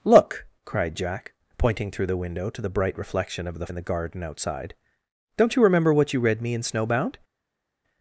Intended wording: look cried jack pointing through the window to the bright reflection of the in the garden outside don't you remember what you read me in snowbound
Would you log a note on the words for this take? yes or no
no